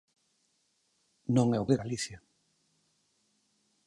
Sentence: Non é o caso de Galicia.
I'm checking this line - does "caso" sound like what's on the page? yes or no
no